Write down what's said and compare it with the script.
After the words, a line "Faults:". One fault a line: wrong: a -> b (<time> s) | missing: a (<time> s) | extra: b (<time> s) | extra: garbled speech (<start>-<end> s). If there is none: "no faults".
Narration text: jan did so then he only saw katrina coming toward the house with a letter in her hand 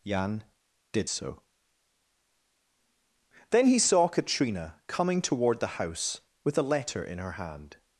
jan did so then he saw katrina coming toward the house with a letter in her hand
Faults:
missing: only (3.8 s)